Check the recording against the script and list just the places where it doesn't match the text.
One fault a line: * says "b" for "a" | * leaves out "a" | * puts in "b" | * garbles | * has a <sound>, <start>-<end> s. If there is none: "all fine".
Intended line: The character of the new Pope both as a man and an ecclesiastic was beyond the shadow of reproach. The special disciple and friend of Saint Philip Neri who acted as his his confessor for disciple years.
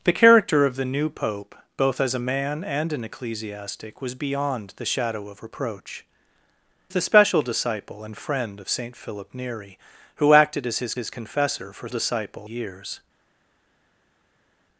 all fine